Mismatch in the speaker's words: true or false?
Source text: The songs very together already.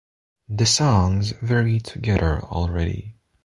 false